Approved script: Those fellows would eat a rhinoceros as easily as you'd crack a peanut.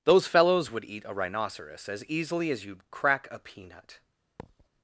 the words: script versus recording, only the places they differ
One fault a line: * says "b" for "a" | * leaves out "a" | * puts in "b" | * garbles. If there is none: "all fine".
all fine